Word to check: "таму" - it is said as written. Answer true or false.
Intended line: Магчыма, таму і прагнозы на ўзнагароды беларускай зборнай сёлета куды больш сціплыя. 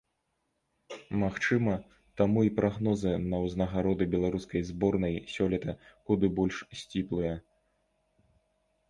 true